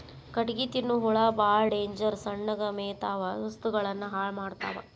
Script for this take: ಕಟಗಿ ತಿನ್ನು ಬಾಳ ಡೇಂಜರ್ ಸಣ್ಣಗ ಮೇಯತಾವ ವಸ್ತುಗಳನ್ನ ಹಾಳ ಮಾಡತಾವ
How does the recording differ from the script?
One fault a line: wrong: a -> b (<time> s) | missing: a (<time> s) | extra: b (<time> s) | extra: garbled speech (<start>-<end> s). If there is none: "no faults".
extra: ಹುಳಾ (1.0 s)